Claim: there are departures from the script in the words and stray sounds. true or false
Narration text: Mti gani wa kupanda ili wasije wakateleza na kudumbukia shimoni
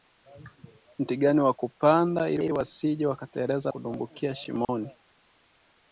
true